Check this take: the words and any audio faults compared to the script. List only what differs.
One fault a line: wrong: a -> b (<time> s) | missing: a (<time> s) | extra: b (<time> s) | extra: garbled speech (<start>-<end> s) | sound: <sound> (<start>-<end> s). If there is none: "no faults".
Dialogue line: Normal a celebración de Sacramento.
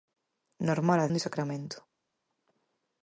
missing: celebración (1.1 s)